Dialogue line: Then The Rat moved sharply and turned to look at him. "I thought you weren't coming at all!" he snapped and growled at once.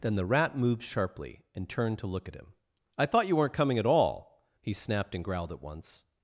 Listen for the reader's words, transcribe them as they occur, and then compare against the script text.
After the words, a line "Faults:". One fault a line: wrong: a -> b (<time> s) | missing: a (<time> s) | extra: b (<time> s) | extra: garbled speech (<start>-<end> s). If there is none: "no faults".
Then The Rat moved sharply and turned to look at him. "I thought you weren't coming at all!" he snapped and growled at once.
Faults:
no faults